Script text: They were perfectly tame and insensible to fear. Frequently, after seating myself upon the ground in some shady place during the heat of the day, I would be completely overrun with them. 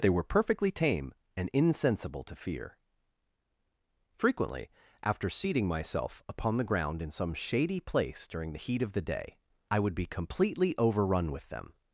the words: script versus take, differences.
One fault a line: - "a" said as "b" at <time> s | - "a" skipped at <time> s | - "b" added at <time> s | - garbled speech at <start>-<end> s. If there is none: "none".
none